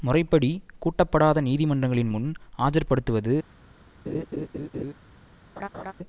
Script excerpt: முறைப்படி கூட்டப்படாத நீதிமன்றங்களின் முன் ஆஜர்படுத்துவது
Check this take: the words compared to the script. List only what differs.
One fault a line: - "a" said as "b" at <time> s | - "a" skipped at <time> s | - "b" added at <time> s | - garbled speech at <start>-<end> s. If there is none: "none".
none